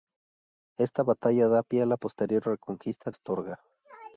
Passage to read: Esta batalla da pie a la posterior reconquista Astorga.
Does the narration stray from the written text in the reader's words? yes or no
no